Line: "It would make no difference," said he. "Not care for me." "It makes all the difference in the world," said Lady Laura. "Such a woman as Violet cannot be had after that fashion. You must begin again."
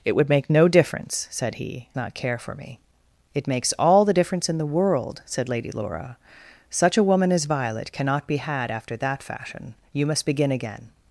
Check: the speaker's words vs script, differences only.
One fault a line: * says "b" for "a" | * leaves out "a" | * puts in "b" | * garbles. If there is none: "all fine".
all fine